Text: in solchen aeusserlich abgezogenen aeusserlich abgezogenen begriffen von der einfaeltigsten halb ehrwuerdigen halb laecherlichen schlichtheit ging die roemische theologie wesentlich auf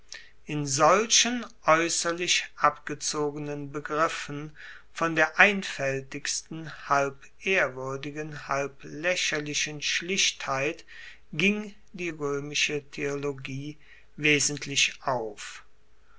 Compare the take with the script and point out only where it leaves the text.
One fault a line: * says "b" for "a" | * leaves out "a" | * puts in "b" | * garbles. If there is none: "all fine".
* leaves out "aeusserlich abgezogenen"